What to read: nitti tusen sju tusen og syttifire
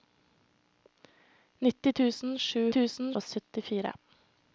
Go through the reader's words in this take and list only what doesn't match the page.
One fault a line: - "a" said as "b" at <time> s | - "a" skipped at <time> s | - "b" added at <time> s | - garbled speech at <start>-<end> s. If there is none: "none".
none